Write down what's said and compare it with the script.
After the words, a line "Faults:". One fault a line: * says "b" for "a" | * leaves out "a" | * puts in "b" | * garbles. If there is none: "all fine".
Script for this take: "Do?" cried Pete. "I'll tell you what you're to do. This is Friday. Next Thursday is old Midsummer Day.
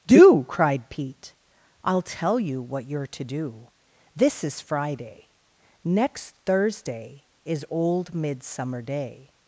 "Do?" cried Pete. "I'll tell you what you're to do. This is Friday. Next Thursday is old Midsummer Day.
Faults:
all fine